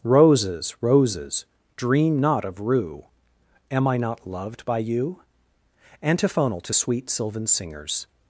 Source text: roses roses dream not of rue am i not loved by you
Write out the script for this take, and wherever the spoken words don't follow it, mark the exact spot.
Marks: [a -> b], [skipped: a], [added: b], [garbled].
roses roses dream not of rue am i not loved by you [added: antiphonal to sweet sylvan singers]